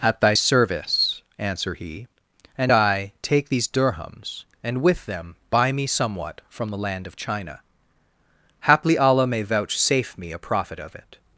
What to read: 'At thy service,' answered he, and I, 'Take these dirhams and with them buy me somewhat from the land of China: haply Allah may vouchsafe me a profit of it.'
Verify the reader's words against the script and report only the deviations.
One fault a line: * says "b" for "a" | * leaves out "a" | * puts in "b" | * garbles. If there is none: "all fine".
* says "answer" for "answered"